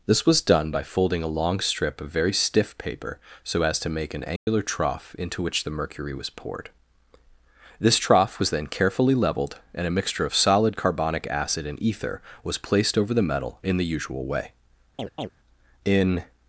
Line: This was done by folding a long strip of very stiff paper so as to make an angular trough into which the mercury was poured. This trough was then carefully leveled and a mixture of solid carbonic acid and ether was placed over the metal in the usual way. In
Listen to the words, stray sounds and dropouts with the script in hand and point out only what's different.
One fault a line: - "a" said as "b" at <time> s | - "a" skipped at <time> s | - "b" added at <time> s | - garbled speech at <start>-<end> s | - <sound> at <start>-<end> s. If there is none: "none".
- dropout at 4.4-4.5 s
- chirp at 15.0-15.3 s